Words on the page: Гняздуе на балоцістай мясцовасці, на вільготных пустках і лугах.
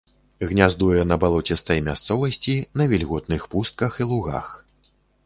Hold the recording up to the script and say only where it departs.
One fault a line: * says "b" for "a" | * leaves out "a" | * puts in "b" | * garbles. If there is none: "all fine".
all fine